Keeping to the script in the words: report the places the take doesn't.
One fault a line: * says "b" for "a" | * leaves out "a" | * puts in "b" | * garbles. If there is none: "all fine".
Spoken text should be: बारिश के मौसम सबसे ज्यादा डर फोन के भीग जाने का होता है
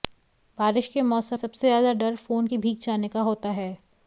all fine